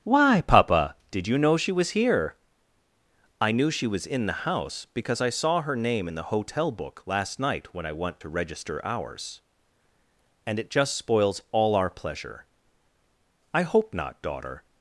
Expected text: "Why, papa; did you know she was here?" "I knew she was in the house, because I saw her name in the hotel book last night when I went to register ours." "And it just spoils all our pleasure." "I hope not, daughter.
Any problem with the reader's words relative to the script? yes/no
no